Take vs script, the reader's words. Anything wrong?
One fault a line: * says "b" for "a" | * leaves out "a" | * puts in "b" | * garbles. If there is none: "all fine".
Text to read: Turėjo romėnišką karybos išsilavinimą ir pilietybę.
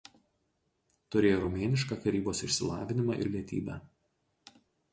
* leaves out "ir"